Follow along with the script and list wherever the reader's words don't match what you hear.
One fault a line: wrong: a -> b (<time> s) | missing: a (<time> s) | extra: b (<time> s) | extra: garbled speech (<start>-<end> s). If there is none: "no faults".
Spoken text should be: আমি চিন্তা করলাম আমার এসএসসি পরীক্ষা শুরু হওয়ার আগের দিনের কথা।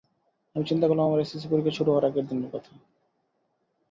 no faults